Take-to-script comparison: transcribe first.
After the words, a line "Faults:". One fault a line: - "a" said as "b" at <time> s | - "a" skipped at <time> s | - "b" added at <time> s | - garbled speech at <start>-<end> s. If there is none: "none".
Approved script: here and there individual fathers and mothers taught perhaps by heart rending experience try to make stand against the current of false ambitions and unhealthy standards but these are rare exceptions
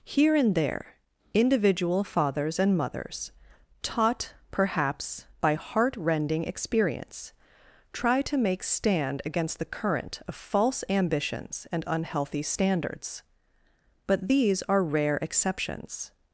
here and there individual fathers and mothers taught perhaps by heart rending experience try to make stand against the current of false ambitions and unhealthy standards but these are rare exceptions
Faults:
none